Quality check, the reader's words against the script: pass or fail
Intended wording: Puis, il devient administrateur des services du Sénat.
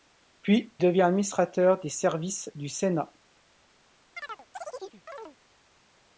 fail